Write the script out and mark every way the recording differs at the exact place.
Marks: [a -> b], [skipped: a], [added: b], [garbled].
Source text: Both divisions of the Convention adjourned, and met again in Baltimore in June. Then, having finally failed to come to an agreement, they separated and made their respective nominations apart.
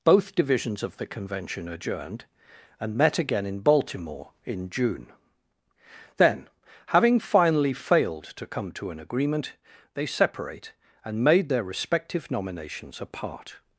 Both divisions of the Convention adjourned, and met again in Baltimore in June. Then, having finally failed to come to an agreement, they [separated -> separate] and made their respective nominations apart.